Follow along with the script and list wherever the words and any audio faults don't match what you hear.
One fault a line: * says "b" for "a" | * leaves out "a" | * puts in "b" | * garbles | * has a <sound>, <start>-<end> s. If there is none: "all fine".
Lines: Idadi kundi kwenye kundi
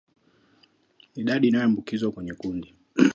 * says "inayoambukizwa" for "kundi"